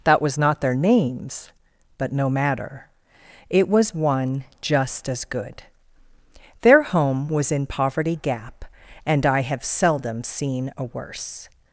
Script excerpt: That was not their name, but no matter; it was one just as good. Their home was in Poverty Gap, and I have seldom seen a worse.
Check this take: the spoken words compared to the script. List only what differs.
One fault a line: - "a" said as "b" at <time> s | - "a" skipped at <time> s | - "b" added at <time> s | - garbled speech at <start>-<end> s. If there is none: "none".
- "name" said as "names" at 0.8 s